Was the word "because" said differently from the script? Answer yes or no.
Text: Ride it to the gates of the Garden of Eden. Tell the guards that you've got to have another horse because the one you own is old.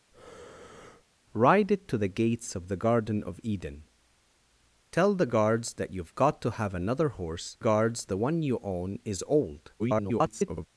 yes